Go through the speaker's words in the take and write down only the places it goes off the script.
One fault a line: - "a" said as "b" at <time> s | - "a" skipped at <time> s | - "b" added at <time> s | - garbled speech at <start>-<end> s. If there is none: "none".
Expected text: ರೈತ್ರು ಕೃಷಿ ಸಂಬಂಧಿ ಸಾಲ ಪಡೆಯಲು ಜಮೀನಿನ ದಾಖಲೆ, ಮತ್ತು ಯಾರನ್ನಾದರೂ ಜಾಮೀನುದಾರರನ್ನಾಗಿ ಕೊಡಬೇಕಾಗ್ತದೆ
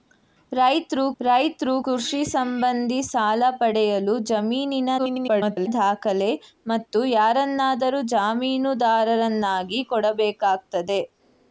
- "ರೈತ್ರು" added at 1.2 s
- garbled speech at 5.0-5.7 s